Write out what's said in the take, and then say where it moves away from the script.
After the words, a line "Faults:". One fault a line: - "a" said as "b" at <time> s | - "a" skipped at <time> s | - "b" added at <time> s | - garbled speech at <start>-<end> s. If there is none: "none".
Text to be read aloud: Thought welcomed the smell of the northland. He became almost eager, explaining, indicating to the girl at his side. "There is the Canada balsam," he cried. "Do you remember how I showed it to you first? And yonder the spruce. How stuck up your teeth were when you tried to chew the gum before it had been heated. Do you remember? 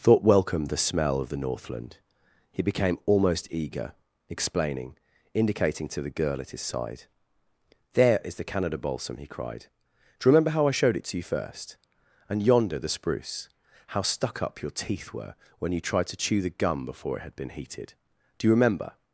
Thought welcomed the smell of the northland. He became almost eager, explaining, indicating to the girl at his side. "There is the Canada balsam," he cried. "Do you remember how I showed it to you first? And yonder the spruce. How stuck up your teeth were when you tried to chew the gum before it had been heated. Do you remember?
Faults:
none